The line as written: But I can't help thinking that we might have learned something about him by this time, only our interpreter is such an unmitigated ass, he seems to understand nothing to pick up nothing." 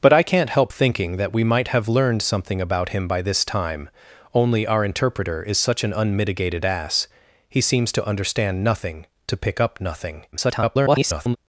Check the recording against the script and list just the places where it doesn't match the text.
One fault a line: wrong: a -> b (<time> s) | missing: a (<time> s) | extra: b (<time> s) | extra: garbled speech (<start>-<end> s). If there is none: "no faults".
extra: garbled speech (10.3-11.4 s)